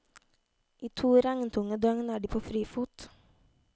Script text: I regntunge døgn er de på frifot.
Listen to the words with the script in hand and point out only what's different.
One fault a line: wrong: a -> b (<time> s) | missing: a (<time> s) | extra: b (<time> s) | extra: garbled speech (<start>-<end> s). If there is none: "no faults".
extra: to (1.0 s)